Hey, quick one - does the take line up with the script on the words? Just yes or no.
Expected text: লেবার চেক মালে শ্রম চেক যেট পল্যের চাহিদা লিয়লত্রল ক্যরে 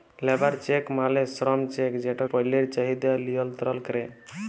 yes